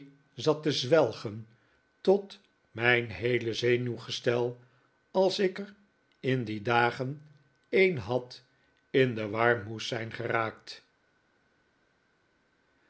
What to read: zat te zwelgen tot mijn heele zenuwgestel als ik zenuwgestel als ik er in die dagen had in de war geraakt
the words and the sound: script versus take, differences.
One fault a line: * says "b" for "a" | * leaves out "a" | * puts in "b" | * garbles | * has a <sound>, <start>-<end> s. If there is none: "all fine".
* leaves out "zenuwgestel als ik"
* puts in "een"
* puts in "moest zijn"